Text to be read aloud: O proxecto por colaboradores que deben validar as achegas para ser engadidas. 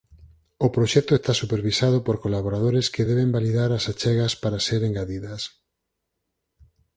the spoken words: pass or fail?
fail